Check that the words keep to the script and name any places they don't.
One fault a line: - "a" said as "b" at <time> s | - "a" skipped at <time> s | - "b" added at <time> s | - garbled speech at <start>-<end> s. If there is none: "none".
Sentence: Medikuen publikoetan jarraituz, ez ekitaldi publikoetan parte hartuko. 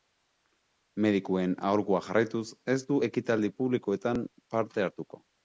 - "publikoetan" said as "aholkua" at 1.7 s
- "du" added at 2.9 s